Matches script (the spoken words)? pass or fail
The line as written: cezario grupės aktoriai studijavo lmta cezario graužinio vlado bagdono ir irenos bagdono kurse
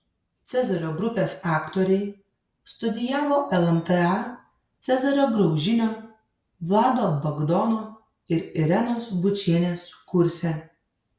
fail